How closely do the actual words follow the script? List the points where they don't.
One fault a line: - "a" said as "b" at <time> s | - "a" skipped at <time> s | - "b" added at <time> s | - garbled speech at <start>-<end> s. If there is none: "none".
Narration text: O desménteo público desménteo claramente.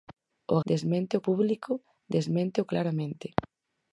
none